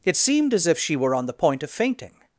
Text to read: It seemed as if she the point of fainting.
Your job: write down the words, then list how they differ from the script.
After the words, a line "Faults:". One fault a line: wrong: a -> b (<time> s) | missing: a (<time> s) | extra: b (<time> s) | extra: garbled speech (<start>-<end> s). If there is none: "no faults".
It seemed as if she were on the point of fainting.
Faults:
extra: were on (1.0 s)